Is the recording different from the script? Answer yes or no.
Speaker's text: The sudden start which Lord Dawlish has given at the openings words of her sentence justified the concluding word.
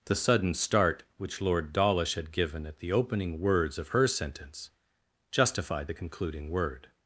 yes